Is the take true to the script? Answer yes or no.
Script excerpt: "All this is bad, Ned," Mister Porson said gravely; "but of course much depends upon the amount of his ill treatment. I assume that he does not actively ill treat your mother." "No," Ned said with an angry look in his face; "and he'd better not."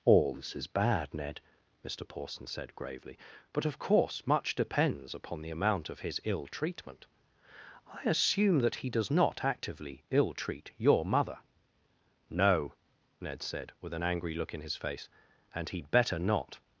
yes